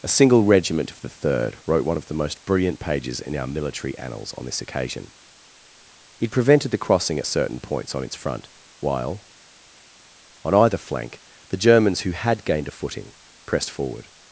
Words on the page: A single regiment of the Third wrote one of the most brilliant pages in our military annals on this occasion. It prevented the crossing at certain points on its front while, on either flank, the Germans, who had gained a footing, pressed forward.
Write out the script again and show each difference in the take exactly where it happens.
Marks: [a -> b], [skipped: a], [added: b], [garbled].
A single regiment of the Third wrote one of the most brilliant pages in our military annals on this occasion. It prevented the crossing at certain points on its front while, on either flank, the Germans, who had gained a footing, pressed forward.